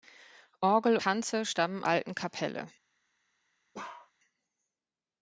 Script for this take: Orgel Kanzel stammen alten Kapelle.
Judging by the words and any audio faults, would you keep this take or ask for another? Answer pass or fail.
fail